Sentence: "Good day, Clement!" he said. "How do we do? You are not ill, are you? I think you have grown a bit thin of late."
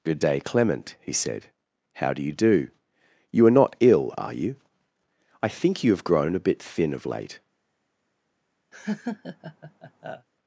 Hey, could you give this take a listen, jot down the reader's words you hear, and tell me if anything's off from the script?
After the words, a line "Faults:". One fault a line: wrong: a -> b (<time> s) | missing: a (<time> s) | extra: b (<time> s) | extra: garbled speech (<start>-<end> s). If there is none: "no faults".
"Good day, Clement!" he said. "How do you do? You are not ill, are you? I think you have grown a bit thin of late."
Faults:
wrong: we -> you (2.2 s)